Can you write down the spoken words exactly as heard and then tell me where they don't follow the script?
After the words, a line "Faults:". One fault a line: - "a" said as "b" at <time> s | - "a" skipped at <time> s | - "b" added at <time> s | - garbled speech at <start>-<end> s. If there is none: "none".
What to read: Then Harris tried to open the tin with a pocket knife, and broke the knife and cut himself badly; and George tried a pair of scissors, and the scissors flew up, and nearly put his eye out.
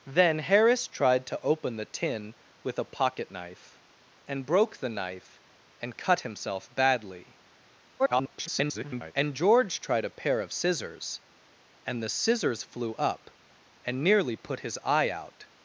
Then Harris tried to open the tin with a pocket knife, and broke the knife and cut himself badly; [garbled] and George tried a pair of scissors, and the scissors flew up, and nearly put his eye out.
Faults:
- garbled speech at 8.0-9.1 s